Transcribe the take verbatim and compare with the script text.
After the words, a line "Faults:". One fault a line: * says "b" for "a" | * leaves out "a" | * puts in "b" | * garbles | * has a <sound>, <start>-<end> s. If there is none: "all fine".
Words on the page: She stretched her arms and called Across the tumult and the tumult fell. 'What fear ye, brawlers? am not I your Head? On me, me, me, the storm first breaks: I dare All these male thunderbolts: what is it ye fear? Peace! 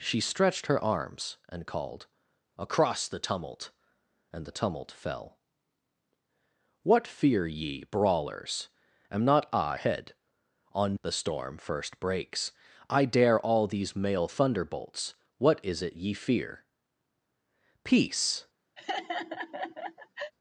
She stretched her arms and called Across the tumult and the tumult fell. 'What fear ye, brawlers? am not I Head? On the storm first breaks: I dare All these male thunderbolts: what is it ye fear? Peace!
Faults:
* leaves out "your"
* leaves out "me me me"
* has a laugh, 18.8-20.3 s